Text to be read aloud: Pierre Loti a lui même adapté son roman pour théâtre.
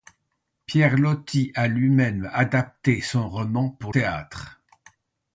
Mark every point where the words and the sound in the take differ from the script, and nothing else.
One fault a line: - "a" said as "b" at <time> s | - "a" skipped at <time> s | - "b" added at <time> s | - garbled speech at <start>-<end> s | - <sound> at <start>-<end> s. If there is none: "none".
none